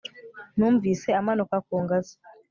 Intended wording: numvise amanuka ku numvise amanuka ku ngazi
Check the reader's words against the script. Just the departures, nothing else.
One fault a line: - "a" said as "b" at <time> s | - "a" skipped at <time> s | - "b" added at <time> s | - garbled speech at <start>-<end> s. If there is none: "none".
- "numvise amanuka ku" skipped at 1.8 s